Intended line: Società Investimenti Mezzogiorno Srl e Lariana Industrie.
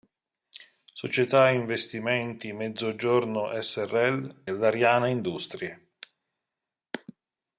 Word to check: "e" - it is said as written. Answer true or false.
false